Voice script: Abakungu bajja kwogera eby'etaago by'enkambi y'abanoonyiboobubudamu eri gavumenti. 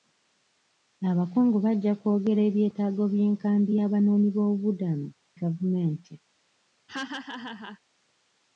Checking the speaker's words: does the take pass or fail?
fail